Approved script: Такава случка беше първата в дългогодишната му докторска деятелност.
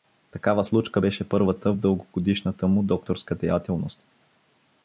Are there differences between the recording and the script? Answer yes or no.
no